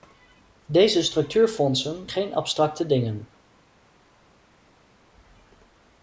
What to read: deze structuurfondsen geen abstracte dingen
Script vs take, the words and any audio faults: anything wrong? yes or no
no